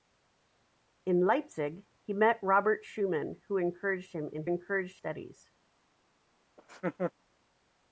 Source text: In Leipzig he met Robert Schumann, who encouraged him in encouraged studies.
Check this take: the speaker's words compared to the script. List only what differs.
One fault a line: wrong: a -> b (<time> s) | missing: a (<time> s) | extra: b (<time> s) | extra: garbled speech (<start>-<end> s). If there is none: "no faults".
no faults